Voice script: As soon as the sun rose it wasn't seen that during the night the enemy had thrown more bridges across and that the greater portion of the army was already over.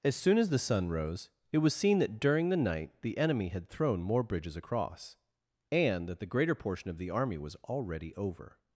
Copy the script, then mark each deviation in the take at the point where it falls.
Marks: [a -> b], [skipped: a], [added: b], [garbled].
As soon as the sun rose it [wasn't -> was] seen that during the night the enemy had thrown more bridges across and that the greater portion of the army was already over.